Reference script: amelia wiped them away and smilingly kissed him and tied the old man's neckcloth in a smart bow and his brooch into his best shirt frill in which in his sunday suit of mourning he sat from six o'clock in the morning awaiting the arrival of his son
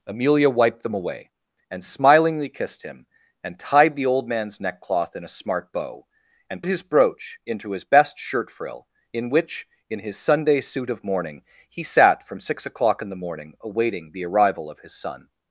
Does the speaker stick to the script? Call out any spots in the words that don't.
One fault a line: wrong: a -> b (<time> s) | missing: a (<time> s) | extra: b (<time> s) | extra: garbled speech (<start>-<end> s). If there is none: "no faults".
no faults